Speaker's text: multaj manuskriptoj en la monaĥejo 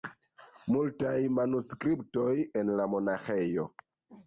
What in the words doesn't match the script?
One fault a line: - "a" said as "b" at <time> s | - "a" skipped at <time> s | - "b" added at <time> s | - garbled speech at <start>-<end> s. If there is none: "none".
none